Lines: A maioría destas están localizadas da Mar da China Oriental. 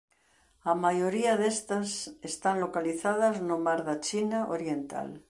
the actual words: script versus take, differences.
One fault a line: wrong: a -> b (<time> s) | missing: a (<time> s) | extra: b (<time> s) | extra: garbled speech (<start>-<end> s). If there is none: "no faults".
wrong: da -> no (3.4 s)